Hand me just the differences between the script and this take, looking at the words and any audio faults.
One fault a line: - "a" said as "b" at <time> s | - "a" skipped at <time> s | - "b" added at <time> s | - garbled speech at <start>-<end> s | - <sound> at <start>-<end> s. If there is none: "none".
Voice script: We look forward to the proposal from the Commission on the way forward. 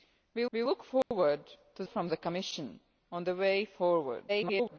- "we" added at 0.5 s
- dropout at 1.0-1.1 s
- "the proposal" skipped at 1.8 s
- garbled speech at 4.3-4.8 s